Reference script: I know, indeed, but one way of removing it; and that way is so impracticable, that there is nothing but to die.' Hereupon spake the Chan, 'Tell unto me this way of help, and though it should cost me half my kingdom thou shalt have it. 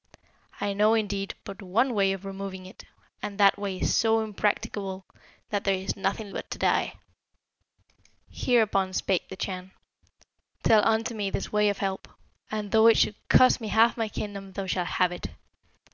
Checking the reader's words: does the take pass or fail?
pass